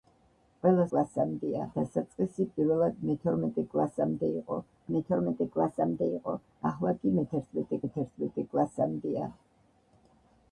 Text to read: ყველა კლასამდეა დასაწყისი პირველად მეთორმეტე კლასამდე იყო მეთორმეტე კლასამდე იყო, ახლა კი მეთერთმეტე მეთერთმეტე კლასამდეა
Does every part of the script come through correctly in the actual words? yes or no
yes